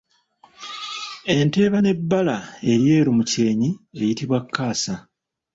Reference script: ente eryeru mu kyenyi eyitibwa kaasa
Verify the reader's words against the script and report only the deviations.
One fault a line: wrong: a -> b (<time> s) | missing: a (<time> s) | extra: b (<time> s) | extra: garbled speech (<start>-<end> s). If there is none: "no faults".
extra: eba n'ebbala (1.7 s)